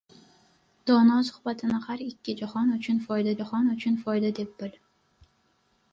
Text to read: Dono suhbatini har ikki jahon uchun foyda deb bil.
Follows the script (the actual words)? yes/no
no